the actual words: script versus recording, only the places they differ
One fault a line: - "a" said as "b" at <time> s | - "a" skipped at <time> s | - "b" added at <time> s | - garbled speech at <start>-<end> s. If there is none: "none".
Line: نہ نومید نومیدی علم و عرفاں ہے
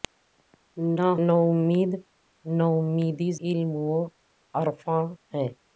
none